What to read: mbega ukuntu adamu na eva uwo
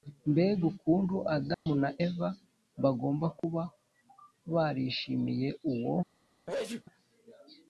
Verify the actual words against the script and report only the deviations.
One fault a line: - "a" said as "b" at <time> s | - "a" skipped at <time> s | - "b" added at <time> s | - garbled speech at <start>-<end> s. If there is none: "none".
- "bagomba kuba barishimiye" added at 2.8 s